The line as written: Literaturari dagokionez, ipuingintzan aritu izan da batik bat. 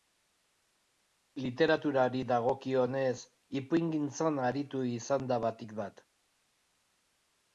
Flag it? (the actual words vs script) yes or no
no